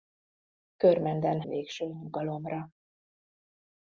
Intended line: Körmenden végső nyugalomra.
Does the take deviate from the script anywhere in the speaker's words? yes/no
no